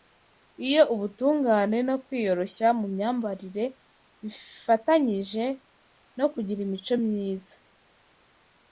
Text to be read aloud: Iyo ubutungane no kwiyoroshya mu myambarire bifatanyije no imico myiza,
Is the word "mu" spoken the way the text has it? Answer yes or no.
yes